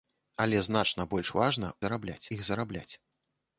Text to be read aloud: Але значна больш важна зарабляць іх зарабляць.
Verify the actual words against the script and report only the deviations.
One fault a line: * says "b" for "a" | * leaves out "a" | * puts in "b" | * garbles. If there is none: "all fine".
all fine